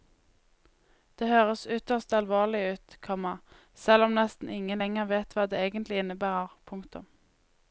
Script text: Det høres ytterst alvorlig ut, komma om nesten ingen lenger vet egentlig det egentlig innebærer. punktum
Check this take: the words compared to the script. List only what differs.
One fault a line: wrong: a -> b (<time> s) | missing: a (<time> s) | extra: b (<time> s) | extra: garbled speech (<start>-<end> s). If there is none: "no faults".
extra: selv (3.8 s)
wrong: egentlig -> hva (5.3 s)